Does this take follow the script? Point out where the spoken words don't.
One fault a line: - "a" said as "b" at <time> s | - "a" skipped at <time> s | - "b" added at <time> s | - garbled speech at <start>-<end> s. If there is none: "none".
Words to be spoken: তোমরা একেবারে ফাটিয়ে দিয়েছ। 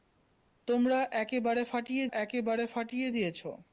- "একেবারে ফাটিয়ে" added at 2.1 s